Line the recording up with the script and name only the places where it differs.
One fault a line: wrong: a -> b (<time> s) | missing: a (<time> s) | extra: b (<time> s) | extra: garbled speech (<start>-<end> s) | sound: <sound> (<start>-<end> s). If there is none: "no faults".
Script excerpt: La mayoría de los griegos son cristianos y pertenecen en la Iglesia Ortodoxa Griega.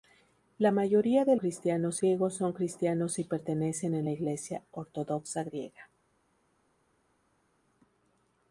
wrong: los -> cristianos (1.4 s)